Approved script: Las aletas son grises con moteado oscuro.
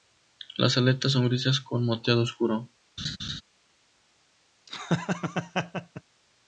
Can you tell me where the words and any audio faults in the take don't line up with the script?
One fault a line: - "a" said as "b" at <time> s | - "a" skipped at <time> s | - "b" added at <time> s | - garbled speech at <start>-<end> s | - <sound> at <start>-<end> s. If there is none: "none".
- laugh at 3.0-3.4 s
- laugh at 4.7-6.0 s